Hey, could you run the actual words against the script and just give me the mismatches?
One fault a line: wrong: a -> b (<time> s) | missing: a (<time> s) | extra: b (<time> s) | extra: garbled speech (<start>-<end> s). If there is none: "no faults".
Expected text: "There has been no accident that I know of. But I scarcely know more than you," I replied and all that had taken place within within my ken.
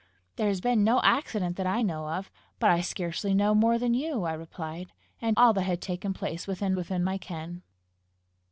no faults